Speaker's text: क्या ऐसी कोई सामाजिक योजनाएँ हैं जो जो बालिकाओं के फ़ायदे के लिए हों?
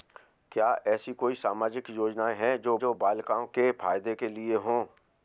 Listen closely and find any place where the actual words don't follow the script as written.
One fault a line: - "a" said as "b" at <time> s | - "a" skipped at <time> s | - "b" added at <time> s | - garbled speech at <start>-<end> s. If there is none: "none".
none